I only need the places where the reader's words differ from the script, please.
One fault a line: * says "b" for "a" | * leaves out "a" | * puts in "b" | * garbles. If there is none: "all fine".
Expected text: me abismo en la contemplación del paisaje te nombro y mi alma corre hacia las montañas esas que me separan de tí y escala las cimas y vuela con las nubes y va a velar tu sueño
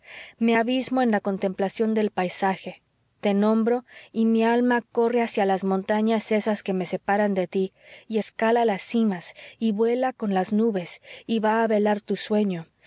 all fine